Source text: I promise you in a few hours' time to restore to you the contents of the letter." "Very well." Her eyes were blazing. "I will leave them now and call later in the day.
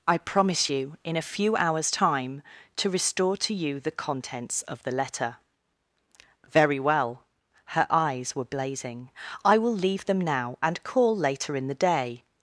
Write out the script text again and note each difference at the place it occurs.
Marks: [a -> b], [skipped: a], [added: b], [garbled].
I promise you in a few hours' time to restore to you the contents of the letter." "Very well." Her eyes were blazing. "I will leave them now and call later in the day.